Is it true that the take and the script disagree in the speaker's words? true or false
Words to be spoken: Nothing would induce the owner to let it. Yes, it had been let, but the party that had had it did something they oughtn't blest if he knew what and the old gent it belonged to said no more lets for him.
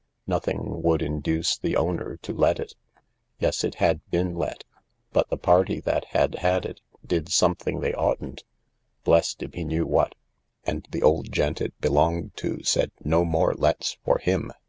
false